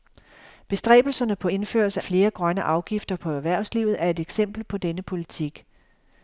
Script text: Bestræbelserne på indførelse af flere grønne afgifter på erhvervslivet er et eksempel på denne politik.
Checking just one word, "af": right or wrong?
wrong